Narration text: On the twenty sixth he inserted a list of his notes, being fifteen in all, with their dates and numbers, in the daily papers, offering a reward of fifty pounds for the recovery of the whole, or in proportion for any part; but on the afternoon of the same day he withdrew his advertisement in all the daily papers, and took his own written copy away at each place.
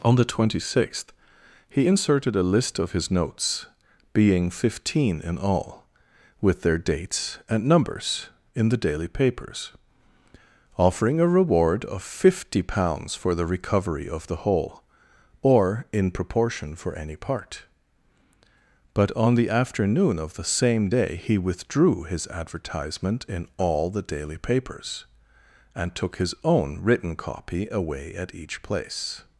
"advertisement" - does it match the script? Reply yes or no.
yes